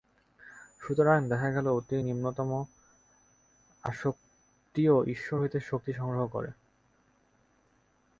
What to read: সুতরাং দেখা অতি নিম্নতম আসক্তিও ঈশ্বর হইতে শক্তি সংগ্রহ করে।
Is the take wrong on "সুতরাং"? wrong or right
right